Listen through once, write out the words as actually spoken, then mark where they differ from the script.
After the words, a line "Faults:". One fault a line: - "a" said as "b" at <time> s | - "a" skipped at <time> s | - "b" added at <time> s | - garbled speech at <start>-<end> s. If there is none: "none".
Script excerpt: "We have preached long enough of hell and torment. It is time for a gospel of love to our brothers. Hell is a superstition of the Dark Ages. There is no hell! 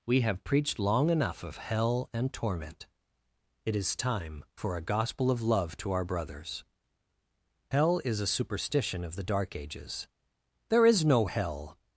"We have preached long enough of hell and torment. It is time for a gospel of love to our brothers. Hell is a superstition of the Dark Ages. There is no hell!
Faults:
none